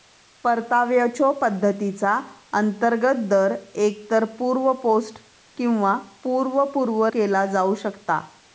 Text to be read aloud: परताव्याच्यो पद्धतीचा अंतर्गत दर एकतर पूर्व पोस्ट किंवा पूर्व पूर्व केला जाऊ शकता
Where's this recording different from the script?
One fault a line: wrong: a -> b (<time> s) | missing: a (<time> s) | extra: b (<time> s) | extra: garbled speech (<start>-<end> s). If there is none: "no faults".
no faults